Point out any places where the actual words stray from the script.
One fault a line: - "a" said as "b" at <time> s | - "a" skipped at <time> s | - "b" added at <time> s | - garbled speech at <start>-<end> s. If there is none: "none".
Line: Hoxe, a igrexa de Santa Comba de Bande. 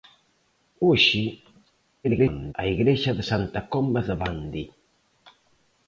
- garbled speech at 2.0-2.5 s